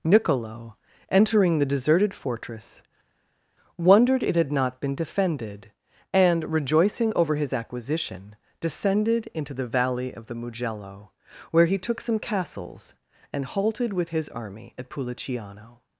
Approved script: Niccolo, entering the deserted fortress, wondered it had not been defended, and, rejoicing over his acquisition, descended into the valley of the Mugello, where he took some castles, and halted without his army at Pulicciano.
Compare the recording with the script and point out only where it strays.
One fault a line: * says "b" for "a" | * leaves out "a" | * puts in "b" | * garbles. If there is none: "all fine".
* says "with" for "without"